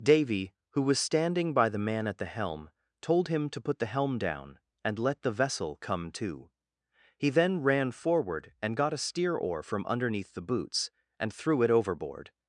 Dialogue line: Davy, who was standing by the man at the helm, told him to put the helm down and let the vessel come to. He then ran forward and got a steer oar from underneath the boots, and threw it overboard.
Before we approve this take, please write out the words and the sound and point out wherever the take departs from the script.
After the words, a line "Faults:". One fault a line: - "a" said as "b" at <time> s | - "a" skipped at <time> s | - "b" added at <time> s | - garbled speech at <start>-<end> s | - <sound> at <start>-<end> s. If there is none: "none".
Davy, who was standing by the man at the helm, told him to put the helm down and let the vessel come to. He then ran forward and got a steer oar from underneath the boots, and threw it overboard.
Faults:
none